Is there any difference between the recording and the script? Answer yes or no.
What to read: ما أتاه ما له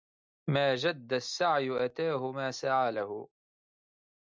yes